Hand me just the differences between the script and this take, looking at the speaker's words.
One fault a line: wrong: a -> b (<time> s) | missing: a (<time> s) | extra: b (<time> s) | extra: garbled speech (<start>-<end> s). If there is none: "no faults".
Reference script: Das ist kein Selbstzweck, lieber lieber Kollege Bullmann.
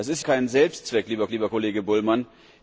no faults